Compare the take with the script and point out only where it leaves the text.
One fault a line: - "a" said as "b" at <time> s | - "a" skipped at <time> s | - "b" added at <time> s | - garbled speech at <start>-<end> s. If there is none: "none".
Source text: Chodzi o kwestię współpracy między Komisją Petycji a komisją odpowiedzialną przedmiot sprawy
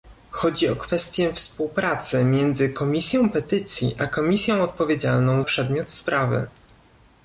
none